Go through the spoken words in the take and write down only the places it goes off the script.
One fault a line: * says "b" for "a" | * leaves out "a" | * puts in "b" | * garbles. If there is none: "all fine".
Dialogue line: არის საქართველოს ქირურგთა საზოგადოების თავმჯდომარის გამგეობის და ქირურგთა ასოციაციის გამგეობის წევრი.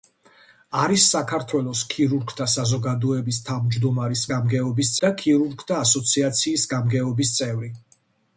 all fine